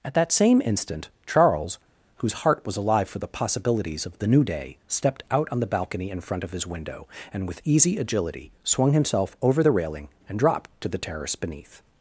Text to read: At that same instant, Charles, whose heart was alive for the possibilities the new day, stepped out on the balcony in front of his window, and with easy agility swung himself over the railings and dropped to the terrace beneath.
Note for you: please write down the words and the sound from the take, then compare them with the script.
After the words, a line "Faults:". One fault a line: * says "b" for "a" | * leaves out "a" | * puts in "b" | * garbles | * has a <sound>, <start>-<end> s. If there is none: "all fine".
At that same instant, Charles, whose heart was alive for the possibilities of the new day, stepped out on the balcony in front of his window, and with easy agility swung himself over the railing and dropped to the terrace beneath.
Faults:
* puts in "of"
* says "railing" for "railings"